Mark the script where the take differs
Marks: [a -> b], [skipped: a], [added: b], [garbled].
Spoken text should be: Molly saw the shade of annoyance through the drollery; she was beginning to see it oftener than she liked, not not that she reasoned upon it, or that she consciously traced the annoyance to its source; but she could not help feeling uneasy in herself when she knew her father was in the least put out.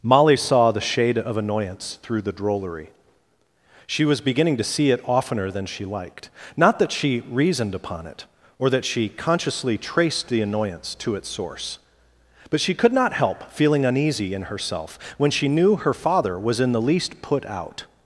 Molly saw the shade of annoyance through the drollery; she was beginning to see it oftener than she liked, not [skipped: not] that she reasoned upon it, or that she consciously traced the annoyance to its source; but she could not help feeling uneasy in herself when she knew her father was in the least put out.